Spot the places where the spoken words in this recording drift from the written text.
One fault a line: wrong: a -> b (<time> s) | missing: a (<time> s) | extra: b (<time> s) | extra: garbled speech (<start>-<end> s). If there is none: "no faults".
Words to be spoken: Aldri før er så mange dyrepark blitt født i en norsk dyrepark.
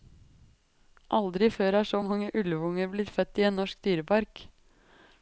wrong: dyrepark -> ulvunger (2.4 s)